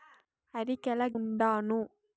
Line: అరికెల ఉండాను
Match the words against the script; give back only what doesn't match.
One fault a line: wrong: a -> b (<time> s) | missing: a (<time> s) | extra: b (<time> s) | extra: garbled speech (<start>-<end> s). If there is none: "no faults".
no faults